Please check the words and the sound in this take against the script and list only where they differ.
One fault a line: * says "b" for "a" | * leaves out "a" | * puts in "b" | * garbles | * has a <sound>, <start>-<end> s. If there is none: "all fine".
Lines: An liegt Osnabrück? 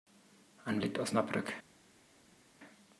all fine